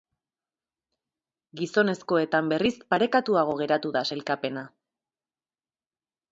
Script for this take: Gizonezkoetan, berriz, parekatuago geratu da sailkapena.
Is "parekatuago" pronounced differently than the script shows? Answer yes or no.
no